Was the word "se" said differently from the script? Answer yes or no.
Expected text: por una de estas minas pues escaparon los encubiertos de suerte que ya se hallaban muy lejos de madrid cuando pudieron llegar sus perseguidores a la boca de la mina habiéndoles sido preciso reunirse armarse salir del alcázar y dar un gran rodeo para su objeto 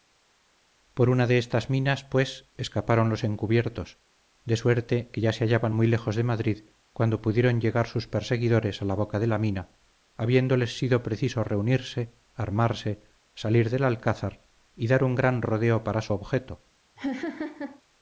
no